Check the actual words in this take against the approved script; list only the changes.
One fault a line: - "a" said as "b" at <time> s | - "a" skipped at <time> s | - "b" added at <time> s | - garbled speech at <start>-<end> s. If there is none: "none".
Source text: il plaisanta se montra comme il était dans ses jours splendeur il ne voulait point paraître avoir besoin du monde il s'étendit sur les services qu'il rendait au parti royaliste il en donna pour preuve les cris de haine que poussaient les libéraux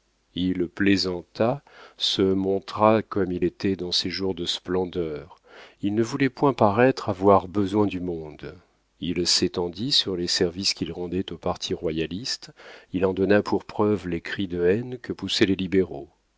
- "de" added at 4.3 s